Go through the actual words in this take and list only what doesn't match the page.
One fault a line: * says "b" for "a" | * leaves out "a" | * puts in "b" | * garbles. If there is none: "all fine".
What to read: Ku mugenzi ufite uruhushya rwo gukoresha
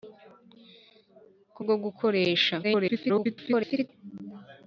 * leaves out "mugenzi ufite uruhushya"
* garbles